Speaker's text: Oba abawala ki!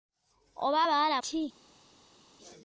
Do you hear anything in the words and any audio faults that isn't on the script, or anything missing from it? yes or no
no